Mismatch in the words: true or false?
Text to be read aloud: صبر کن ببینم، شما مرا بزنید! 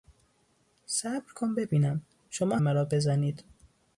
false